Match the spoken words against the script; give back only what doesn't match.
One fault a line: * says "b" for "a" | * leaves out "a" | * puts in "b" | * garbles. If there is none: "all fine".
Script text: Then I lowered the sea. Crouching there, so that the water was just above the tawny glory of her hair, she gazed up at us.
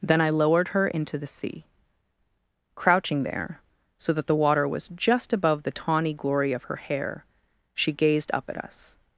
* puts in "her into"